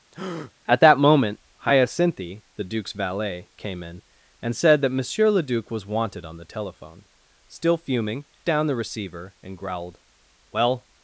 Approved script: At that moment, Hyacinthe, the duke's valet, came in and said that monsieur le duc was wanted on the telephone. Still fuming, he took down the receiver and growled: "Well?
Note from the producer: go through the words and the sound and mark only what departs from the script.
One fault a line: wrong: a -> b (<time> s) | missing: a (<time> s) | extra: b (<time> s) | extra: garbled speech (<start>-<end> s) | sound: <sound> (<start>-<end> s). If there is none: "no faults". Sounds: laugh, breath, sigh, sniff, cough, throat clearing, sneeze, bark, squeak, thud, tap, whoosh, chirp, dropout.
sound: breath (0.1-0.5 s)
missing: he took (8.2 s)